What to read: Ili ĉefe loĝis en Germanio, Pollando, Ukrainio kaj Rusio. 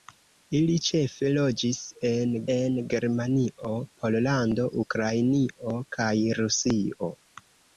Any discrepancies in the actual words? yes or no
yes